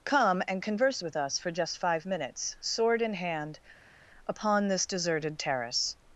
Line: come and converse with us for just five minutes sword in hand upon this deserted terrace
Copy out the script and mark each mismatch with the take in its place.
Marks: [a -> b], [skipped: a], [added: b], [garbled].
come and converse with us for just five minutes sword in hand upon this deserted terrace